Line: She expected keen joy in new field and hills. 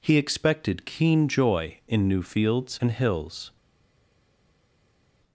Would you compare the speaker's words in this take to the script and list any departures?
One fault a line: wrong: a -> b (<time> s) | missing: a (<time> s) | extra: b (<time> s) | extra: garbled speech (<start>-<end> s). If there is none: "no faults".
wrong: She -> He (0.0 s)
wrong: field -> fields (2.2 s)